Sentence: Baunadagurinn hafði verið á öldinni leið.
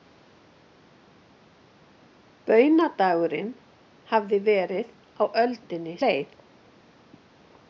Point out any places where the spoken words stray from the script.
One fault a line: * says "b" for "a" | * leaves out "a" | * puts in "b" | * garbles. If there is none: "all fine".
all fine